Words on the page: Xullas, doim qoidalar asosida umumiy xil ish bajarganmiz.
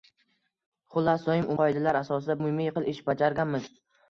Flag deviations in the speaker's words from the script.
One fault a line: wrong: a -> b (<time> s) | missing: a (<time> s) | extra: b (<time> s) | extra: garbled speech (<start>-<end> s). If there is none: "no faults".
no faults